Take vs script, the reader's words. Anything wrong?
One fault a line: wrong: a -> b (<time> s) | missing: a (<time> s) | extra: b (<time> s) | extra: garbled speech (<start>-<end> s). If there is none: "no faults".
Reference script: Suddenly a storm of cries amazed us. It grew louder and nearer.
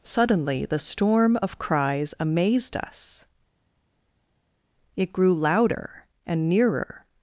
wrong: a -> the (0.7 s)